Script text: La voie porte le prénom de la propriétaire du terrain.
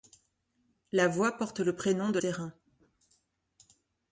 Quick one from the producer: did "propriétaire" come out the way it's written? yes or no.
no